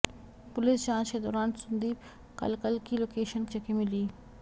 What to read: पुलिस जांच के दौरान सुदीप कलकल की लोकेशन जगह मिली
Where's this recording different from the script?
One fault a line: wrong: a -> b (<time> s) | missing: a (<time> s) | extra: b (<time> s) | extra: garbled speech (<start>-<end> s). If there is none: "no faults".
no faults